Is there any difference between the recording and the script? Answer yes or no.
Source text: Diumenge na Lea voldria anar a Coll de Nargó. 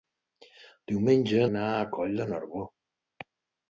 yes